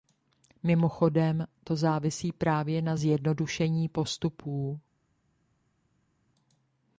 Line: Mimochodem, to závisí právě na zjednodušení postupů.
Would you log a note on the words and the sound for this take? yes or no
no